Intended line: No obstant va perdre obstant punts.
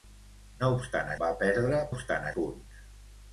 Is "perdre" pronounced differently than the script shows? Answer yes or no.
no